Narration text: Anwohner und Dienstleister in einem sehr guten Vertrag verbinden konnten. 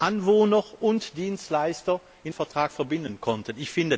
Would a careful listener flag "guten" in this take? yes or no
yes